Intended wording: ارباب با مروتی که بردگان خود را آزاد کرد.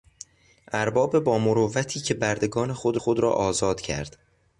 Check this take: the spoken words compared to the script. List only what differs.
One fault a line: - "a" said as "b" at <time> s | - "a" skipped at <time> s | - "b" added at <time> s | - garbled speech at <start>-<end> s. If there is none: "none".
- "خود" added at 3.0 s